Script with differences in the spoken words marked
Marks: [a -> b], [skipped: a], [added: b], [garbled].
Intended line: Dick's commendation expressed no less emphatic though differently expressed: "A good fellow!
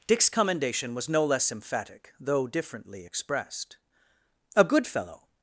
Dick's commendation [expressed -> was] no less emphatic though differently expressed: "A good fellow!